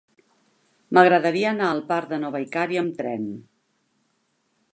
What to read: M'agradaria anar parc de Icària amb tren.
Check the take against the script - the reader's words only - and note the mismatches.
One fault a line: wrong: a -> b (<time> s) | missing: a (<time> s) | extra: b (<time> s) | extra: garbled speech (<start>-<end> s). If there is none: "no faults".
extra: al (1.7 s)
extra: Nova (2.3 s)